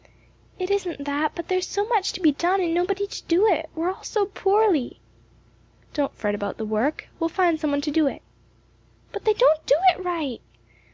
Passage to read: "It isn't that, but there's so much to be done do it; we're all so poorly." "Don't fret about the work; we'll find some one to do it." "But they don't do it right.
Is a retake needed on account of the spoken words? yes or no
yes